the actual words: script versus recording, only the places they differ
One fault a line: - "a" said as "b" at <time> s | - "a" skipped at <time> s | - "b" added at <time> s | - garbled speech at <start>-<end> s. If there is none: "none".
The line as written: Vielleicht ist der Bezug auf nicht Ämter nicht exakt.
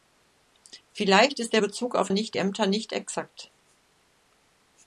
none